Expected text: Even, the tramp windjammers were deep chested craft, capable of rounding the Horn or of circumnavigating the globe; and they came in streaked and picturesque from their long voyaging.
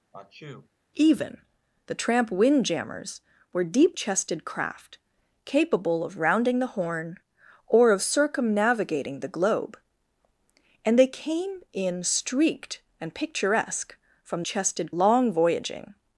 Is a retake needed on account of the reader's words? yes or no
yes